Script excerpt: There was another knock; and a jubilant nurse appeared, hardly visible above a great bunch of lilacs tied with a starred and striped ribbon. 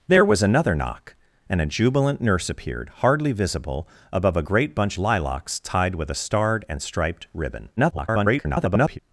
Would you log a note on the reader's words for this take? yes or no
yes